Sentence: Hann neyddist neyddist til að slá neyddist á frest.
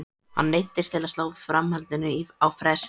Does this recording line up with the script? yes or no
no